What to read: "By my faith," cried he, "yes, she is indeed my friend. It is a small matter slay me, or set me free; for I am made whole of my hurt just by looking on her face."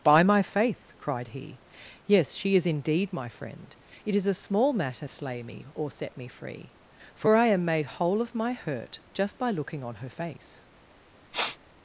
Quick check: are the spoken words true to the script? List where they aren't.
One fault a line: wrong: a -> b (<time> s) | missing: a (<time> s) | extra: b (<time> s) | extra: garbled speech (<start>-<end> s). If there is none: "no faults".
no faults